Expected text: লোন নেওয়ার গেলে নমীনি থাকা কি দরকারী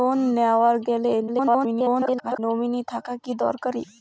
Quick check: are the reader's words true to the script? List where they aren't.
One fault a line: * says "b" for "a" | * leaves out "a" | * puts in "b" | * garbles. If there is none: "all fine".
* garbles